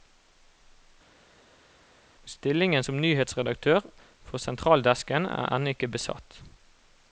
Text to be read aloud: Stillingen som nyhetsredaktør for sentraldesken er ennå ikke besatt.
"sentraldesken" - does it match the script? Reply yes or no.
yes